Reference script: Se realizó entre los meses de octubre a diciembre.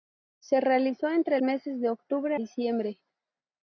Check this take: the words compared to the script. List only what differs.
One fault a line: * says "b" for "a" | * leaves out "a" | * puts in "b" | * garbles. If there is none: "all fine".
* leaves out "los"
* leaves out "a"